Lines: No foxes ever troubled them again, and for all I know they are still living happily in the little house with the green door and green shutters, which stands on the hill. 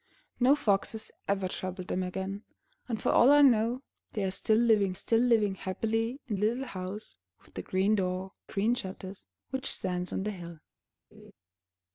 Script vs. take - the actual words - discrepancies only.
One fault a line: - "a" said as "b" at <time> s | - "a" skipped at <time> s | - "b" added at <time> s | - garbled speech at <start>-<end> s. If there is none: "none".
- "still living" added at 4.9 s
- "the" skipped at 6.3 s
- "and" skipped at 8.3 s